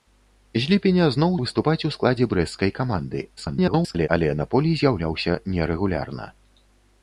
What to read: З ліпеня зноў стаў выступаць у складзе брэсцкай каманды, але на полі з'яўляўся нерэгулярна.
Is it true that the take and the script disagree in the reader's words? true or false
true